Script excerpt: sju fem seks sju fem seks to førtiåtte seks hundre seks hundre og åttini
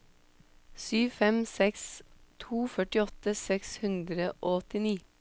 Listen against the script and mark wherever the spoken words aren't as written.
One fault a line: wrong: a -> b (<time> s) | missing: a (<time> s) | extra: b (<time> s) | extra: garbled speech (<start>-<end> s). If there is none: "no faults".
missing: sju fem seks (1.8 s)
missing: seks hundre (4.3 s)